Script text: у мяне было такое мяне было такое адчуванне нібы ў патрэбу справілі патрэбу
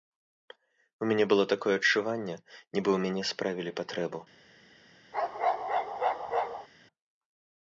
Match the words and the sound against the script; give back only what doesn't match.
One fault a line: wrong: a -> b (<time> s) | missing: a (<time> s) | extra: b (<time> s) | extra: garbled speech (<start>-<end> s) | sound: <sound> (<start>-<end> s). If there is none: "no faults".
missing: мяне было такое (1.8 s)
wrong: патрэбу -> мяне (3.0 s)
sound: bark (5.1-6.7 s)